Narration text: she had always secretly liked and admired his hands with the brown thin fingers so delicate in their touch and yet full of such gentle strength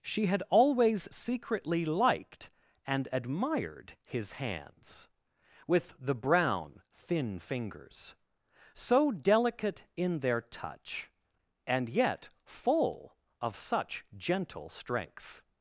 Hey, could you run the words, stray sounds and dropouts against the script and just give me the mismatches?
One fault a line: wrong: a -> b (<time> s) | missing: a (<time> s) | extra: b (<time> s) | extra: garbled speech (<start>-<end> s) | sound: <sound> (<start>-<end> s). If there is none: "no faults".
no faults